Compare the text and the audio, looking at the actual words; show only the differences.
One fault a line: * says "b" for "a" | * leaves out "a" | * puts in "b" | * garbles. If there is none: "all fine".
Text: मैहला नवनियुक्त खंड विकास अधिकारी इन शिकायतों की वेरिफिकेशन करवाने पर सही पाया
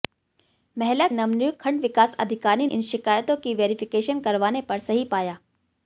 all fine